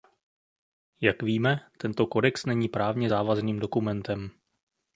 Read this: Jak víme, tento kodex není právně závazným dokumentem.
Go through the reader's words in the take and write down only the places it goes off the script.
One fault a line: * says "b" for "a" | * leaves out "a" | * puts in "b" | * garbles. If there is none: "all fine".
all fine